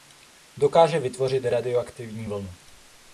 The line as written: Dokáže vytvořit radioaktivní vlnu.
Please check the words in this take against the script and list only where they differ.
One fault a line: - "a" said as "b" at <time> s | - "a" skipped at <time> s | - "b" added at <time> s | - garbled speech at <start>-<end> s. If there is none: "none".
none